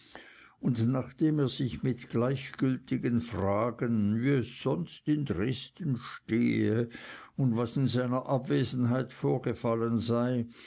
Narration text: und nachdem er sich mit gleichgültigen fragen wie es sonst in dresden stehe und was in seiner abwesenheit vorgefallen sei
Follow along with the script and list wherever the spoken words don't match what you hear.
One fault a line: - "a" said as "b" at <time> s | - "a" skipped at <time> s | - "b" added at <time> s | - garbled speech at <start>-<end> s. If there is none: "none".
none